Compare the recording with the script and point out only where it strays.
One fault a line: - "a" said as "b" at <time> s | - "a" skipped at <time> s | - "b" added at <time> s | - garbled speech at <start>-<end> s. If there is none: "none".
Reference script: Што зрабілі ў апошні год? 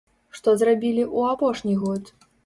none